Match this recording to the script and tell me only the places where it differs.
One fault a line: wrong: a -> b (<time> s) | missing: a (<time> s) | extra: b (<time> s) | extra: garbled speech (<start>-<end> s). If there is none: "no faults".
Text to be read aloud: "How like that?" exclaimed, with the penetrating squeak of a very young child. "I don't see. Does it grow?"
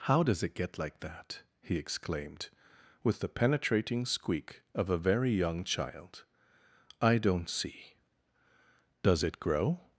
extra: does it get (0.2 s)
extra: he (1.6 s)